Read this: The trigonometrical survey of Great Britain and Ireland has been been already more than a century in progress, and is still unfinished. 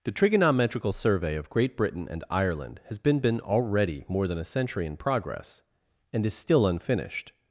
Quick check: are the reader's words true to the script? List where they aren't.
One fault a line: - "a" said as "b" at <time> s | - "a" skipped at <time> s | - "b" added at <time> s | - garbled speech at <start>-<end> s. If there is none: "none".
none